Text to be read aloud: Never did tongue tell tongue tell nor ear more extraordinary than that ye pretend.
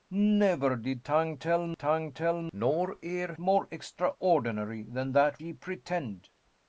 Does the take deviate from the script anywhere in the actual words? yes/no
no